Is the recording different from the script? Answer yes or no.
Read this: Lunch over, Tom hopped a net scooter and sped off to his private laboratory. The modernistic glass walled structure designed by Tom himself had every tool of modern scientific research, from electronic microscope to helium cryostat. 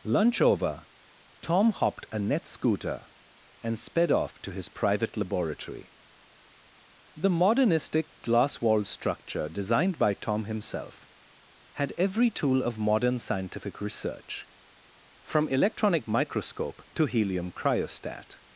no